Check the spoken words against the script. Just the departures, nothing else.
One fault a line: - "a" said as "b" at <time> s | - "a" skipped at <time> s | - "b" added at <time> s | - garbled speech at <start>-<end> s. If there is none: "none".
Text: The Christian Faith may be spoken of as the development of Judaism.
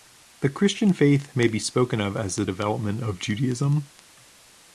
none